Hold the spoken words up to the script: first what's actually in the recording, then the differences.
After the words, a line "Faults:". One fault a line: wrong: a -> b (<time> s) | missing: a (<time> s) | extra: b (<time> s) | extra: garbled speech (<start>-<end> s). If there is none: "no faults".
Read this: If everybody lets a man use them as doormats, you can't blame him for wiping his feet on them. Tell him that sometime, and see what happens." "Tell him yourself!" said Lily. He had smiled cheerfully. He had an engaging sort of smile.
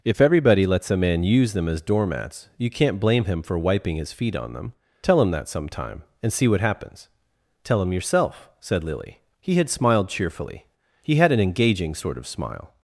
If everybody lets a man use them as doormats, you can't blame him for wiping his feet on them. Tell him that sometime, and see what happens." "Tell him yourself!" said Lily. He had smiled cheerfully. He had an engaging sort of smile.
Faults:
no faults